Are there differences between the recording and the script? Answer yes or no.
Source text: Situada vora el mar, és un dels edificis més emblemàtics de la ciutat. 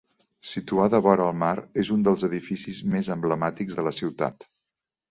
no